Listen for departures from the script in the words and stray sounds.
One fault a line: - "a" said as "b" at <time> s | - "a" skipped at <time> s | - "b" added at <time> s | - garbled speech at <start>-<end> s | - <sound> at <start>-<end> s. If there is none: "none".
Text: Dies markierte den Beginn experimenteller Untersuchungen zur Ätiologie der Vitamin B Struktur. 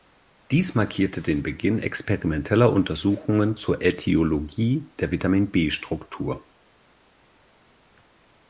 none